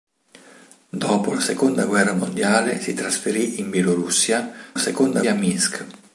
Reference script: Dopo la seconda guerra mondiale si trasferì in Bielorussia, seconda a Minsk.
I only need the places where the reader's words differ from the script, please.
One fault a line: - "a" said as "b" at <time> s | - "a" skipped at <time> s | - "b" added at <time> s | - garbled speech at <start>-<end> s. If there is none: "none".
none